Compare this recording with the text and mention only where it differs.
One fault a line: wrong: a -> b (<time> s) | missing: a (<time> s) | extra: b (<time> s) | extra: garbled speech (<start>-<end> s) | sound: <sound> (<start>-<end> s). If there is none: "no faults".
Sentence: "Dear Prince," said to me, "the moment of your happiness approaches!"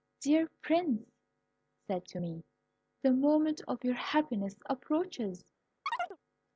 sound: chirp (5.9-6.2 s)